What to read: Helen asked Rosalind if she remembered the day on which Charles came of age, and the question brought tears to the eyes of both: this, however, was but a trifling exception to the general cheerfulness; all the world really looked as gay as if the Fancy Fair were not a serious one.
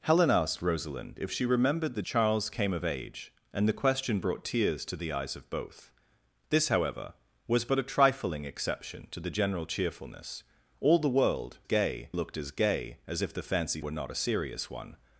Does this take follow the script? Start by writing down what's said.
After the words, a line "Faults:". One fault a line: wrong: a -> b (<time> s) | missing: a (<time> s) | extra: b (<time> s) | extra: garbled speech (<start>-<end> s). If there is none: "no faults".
Helen asked Rosalind if she remembered the Charles came of age, and the question brought tears to the eyes of both: this, however, was but a trifling exception to the general cheerfulness; all the world gay looked as gay as if the Fancy Were not a serious one.
Faults:
missing: day on which (2.0 s)
wrong: really -> gay (11.6 s)
missing: Fair (13.8 s)